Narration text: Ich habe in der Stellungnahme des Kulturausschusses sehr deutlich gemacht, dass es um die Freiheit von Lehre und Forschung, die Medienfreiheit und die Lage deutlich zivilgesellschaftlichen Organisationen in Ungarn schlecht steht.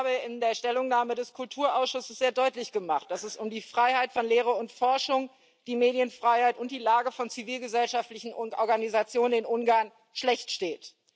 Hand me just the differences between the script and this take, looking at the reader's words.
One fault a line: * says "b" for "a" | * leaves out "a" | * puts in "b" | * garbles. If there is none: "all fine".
* says "von" for "deutlich"